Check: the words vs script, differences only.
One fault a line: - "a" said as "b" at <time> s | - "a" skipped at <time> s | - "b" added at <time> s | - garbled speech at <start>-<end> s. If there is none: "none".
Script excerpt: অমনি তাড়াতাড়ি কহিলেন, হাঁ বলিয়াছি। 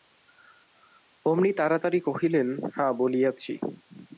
none